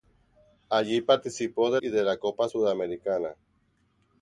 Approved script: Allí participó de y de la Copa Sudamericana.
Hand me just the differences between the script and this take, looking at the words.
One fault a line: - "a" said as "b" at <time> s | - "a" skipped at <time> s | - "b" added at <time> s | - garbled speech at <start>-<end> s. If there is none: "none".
none